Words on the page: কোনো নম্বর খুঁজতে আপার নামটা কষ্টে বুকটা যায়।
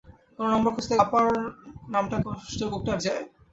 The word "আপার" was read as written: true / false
true